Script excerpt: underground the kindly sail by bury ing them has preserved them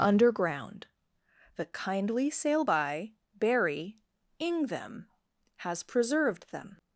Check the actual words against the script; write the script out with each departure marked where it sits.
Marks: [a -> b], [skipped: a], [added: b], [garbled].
underground the kindly sail by bury ing them has preserved them